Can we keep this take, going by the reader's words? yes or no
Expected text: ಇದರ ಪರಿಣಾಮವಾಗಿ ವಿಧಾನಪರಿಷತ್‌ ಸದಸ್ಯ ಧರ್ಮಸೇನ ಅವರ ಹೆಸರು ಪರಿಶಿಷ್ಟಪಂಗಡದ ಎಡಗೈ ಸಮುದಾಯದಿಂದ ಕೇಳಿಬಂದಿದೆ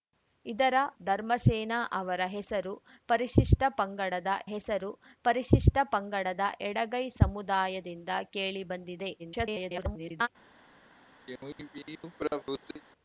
no